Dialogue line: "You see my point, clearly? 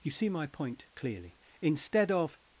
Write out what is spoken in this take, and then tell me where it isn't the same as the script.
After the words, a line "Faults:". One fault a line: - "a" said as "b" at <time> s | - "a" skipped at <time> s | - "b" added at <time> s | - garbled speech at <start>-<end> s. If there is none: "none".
"You see my point, clearly? Instead of
Faults:
- "Instead of" added at 1.6 s